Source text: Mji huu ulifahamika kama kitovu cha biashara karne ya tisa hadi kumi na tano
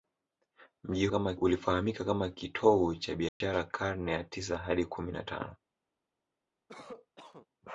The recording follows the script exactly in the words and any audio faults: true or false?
false